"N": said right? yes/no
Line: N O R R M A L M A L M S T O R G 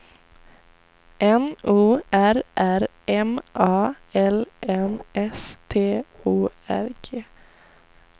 yes